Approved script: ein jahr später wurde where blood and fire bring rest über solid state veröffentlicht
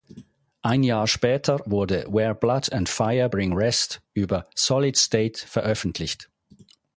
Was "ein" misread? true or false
false